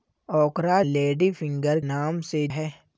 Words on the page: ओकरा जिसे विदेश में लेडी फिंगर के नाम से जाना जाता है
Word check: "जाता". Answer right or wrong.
wrong